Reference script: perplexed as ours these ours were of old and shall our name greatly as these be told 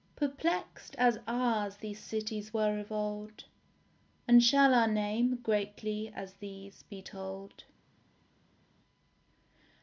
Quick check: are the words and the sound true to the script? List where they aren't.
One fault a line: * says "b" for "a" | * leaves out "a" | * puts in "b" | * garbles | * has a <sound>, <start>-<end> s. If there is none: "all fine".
* says "cities" for "ours"